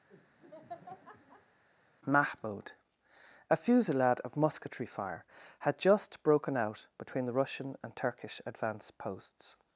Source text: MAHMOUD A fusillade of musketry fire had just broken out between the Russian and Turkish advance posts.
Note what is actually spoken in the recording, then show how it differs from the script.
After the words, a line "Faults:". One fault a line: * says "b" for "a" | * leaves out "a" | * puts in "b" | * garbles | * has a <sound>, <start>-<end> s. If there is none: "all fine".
MAHMOUD A fusillade of musketry fire had just broken out between the Russian and Turkish advance posts.
Faults:
* has a laugh, 0.1-1.6 s